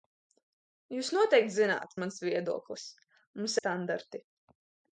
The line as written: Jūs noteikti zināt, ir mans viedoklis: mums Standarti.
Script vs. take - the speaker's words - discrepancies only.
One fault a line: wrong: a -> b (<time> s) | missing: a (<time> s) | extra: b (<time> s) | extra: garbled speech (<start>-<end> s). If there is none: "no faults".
no faults